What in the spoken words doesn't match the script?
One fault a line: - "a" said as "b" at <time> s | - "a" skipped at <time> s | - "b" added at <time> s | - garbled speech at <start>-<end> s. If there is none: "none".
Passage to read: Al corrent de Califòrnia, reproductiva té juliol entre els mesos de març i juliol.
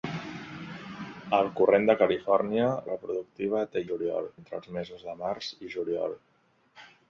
none